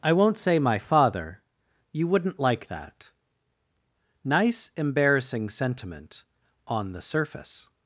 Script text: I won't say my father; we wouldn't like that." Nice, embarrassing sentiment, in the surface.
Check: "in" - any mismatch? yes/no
yes